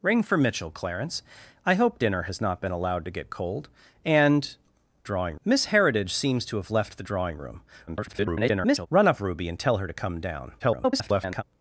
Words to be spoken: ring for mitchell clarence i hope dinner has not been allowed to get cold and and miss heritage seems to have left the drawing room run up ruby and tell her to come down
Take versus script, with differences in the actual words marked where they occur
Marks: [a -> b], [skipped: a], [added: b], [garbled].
ring for mitchell clarence i hope dinner has not been allowed to get cold and [and -> drawing] miss heritage seems to have left the drawing room [garbled] run up ruby and tell her to come down [garbled]